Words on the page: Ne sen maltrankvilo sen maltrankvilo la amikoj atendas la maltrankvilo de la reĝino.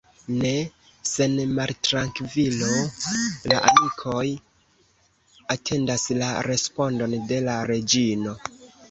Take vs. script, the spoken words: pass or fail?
fail